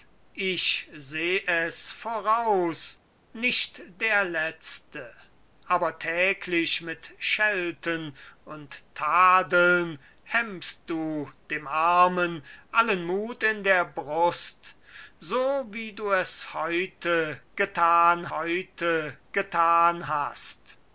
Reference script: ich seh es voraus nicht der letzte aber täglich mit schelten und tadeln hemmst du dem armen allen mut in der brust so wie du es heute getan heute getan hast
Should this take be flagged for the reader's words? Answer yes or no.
no